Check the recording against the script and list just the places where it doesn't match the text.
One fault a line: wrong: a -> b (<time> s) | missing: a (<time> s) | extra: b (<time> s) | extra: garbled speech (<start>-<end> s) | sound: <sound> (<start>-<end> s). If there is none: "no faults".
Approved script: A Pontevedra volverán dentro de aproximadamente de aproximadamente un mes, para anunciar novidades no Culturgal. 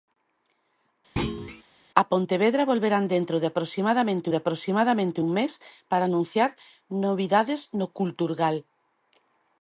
sound: thud (1.2-1.6 s)